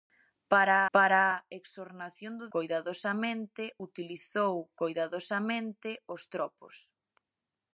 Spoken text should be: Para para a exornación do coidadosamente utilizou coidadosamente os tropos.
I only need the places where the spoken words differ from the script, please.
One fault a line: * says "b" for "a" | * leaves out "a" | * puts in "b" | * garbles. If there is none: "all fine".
all fine